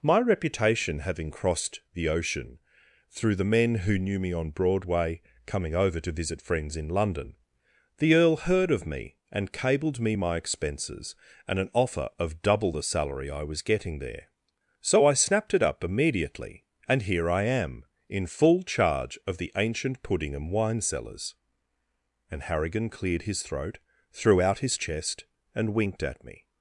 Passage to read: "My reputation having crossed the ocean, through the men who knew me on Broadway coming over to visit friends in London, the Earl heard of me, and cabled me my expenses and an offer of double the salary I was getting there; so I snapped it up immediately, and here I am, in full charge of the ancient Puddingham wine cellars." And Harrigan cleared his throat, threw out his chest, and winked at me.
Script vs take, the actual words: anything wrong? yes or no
no